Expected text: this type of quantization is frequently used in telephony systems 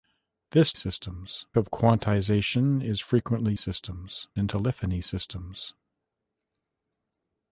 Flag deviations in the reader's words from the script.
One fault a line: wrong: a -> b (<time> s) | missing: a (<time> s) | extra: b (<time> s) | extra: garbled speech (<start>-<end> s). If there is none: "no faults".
wrong: type -> systems (0.7 s)
wrong: used -> systems (3.6 s)